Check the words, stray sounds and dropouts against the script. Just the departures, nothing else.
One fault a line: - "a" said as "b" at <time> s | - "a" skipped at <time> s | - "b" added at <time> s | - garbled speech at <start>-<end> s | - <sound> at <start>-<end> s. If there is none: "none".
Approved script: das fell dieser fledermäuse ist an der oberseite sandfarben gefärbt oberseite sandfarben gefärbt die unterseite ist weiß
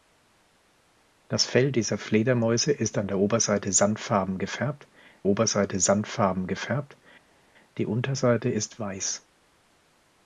none